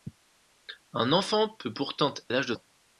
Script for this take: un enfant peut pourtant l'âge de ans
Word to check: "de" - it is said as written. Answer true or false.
true